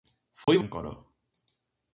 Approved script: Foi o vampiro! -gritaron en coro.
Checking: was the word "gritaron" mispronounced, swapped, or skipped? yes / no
yes